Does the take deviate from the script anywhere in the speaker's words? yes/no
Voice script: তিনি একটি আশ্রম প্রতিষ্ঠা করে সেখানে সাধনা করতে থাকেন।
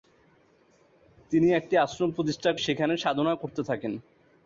yes